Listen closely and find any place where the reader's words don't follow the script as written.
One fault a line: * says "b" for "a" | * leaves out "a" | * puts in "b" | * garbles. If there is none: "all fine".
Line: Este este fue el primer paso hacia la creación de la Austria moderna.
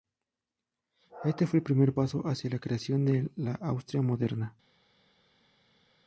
* leaves out "este"